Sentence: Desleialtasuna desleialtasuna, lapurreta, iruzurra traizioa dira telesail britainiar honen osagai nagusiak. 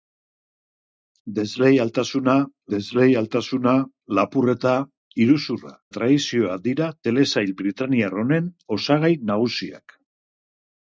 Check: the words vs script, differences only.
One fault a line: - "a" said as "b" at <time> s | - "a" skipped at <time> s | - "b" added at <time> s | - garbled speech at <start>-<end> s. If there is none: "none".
none